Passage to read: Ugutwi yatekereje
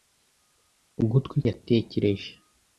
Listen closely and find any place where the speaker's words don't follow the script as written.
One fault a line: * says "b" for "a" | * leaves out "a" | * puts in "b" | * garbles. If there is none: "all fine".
all fine